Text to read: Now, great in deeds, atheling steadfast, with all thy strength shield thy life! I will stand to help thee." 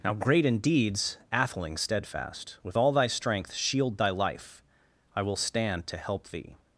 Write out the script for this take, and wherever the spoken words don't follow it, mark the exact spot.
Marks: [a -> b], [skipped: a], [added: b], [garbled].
Now, great in deeds, atheling steadfast, with all thy strength shield thy life! I will stand to help thee."